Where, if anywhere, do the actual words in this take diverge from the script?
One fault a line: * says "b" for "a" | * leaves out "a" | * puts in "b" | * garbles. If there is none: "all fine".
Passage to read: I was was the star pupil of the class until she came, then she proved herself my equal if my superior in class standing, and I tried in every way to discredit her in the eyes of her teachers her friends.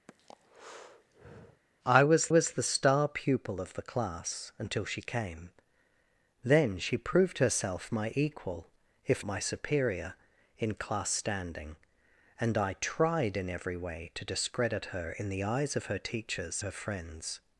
all fine